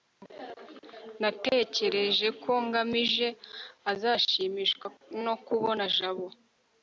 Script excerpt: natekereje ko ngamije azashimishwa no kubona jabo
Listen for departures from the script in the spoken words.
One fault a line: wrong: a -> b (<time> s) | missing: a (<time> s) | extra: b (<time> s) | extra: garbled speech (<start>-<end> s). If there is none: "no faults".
no faults